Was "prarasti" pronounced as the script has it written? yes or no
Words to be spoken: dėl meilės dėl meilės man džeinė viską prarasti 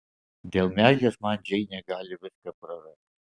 yes